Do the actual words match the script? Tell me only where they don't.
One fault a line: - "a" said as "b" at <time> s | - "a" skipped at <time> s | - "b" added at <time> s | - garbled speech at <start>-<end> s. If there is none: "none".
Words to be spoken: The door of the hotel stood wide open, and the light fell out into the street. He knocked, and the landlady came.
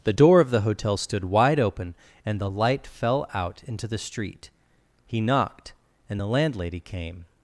none